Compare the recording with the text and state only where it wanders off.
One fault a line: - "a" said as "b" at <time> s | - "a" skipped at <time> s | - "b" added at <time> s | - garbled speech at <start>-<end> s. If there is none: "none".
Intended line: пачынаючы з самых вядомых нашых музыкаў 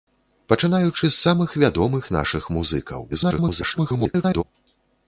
- garbled speech at 3.1-4.4 s